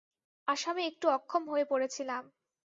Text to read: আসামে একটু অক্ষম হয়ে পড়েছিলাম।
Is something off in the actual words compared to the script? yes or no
no